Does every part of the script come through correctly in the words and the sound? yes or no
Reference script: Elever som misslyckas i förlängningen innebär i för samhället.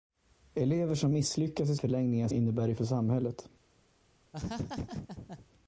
no